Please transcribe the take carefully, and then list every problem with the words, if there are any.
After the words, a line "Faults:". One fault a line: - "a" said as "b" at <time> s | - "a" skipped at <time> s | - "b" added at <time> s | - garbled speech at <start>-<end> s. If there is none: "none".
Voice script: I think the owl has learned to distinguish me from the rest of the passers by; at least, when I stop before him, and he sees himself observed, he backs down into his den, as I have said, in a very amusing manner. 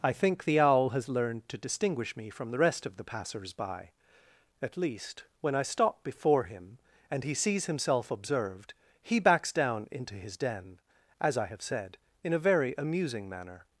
I think the owl has learned to distinguish me from the rest of the passers by; at least, when I stop before him, and he sees himself observed, he backs down into his den, as I have said, in a very amusing manner.
Faults:
none